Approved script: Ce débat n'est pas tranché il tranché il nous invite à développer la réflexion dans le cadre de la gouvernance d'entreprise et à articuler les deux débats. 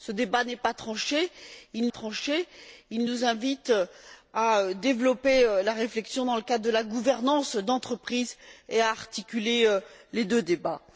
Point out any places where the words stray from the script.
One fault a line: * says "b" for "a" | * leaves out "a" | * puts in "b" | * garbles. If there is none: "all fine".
all fine